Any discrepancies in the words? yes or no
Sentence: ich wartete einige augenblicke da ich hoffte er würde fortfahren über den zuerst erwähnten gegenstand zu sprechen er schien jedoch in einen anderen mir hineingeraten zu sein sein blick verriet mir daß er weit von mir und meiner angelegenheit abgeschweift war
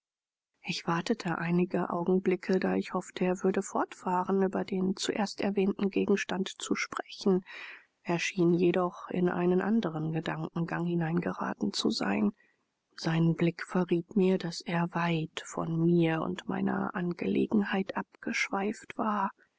yes